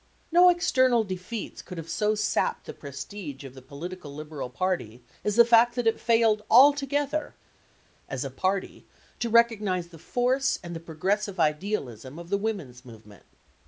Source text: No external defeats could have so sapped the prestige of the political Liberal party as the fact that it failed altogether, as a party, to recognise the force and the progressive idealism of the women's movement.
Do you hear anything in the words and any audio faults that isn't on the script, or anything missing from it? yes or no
no